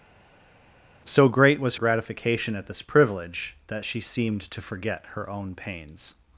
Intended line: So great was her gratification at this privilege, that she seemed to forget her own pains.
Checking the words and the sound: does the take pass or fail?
fail